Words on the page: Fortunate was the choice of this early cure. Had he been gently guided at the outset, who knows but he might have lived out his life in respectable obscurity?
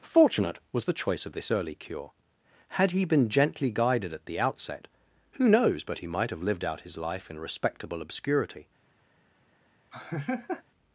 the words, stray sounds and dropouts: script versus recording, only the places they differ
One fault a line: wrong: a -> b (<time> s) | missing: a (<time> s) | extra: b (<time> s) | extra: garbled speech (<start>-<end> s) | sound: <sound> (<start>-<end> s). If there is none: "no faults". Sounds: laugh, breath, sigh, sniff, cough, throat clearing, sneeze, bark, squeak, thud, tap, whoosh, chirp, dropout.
sound: laugh (9.9-10.6 s)